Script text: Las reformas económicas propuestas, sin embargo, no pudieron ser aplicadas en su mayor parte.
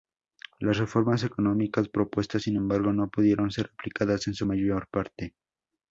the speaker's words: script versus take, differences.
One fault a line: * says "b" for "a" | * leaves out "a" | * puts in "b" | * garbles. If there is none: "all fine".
all fine